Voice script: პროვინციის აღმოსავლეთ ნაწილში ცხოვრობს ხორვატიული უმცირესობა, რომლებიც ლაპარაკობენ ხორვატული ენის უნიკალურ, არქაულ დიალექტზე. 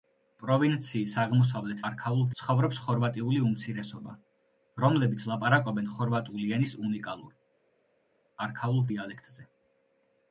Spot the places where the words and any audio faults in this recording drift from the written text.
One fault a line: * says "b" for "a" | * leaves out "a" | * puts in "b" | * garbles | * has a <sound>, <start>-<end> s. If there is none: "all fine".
* says "არქაულ" for "ნაწილში"